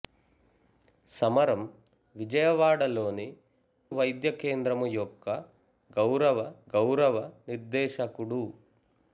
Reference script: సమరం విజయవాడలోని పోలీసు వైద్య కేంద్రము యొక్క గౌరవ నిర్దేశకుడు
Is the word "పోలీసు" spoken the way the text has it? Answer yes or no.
no